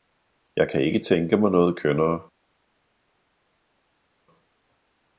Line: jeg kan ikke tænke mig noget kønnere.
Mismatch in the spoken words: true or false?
false